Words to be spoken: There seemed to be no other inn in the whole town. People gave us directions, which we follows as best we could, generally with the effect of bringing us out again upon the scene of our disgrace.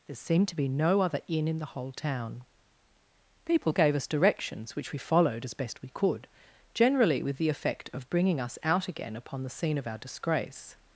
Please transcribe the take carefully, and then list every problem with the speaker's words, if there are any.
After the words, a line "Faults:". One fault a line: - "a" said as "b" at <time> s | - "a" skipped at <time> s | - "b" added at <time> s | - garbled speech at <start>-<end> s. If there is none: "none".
There seemed to be no other inn in the whole town. People gave us directions, which we followed as best we could, generally with the effect of bringing us out again upon the scene of our disgrace.
Faults:
- "follows" said as "followed" at 5.0 s